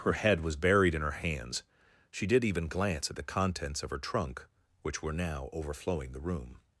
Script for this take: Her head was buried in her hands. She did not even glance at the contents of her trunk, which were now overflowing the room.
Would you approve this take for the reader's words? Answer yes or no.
no